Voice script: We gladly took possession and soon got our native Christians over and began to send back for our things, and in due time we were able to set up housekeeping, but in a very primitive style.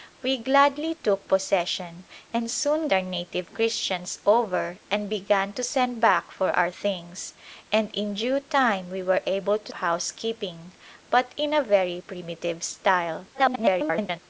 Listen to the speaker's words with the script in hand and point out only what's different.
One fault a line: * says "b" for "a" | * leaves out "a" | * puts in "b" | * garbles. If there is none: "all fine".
* leaves out "got"
* leaves out "set up"
* garbles